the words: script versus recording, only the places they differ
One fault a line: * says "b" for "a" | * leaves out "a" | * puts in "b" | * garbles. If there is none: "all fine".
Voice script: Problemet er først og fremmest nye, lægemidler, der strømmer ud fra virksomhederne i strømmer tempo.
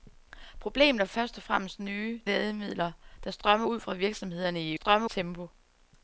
all fine